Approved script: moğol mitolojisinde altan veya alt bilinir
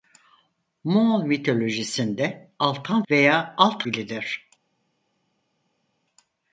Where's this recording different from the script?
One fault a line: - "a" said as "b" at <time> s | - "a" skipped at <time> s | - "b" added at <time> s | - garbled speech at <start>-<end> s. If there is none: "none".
none